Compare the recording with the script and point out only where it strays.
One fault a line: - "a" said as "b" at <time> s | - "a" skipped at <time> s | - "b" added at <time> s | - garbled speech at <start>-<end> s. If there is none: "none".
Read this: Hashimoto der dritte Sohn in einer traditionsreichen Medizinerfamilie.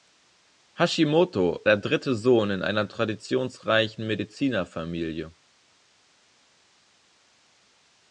none